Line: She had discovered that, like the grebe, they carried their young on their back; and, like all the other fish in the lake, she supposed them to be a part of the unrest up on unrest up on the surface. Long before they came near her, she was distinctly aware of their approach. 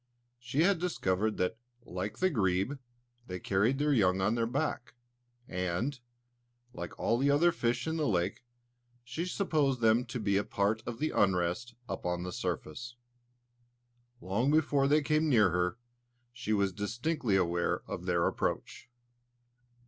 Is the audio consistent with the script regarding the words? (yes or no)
no